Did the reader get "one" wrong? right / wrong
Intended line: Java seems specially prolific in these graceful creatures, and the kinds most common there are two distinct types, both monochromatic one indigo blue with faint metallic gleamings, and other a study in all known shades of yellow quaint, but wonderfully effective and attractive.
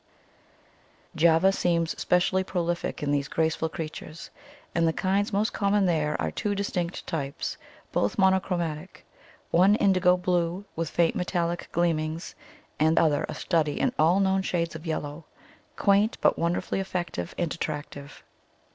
right